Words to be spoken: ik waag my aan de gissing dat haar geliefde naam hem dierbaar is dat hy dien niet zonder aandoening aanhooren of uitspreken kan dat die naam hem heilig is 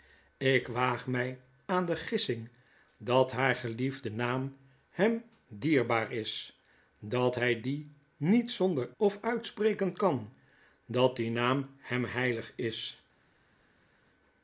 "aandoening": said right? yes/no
no